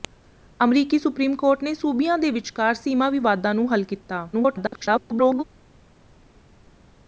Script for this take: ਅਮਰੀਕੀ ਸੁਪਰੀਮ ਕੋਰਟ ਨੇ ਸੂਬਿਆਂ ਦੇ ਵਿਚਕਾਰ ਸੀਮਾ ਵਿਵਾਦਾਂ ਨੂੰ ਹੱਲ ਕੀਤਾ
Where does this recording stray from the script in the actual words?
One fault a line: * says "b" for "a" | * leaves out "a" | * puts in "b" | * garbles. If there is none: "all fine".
* garbles